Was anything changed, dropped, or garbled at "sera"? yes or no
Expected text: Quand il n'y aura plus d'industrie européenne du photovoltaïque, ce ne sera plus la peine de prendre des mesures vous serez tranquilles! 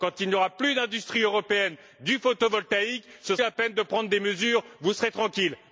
yes